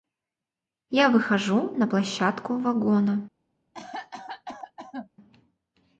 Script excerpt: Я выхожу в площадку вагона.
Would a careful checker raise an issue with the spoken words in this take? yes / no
yes